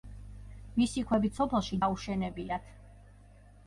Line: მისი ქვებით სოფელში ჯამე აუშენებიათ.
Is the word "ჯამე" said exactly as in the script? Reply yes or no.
no